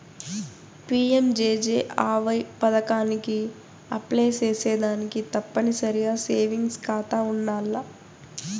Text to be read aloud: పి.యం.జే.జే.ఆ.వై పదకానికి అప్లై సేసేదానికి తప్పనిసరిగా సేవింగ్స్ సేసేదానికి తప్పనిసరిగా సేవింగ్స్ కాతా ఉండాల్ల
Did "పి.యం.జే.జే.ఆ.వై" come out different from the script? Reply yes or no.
no